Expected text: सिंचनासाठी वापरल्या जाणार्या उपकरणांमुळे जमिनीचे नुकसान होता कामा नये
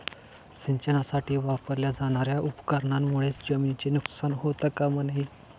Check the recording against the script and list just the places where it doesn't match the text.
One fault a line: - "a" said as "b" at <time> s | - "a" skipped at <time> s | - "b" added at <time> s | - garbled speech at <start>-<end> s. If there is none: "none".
none